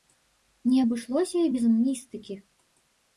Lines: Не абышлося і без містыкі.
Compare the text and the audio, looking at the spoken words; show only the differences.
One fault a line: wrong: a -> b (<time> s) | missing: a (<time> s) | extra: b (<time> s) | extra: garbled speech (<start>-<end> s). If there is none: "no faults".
no faults